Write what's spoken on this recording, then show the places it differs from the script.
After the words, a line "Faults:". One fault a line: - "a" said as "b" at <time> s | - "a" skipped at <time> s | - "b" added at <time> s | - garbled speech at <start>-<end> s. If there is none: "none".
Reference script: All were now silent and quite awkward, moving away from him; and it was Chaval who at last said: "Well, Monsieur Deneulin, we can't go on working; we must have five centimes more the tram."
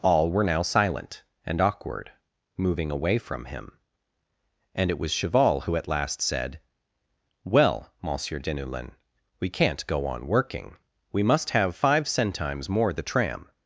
All were now silent and awkward, moving away from him; and it was Chaval who at last said: "Well, Monsieur Deneulin, we can't go on working; we must have five centimes more the tram."
Faults:
- "quite" skipped at 1.6 s